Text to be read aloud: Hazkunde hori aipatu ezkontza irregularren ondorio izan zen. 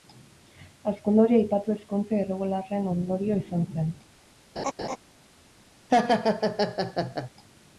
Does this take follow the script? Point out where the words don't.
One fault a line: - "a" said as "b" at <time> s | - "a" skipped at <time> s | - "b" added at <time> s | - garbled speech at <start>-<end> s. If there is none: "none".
none